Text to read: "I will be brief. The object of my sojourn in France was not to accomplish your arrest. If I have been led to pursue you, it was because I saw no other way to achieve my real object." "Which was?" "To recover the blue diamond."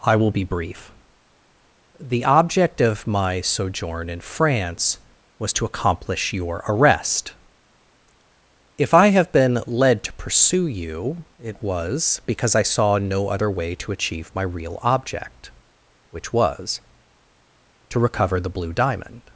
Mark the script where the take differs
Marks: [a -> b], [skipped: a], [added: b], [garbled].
"I will be brief. The object of my sojourn in France was [skipped: not] to accomplish your arrest. If I have been led to pursue you, it was because I saw no other way to achieve my real object." "Which was?" "To recover the blue diamond."